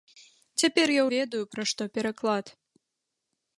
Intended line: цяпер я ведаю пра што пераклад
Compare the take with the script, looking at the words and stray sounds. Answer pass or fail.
pass